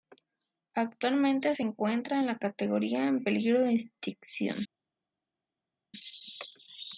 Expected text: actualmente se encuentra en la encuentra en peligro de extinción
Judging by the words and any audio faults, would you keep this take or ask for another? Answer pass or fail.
fail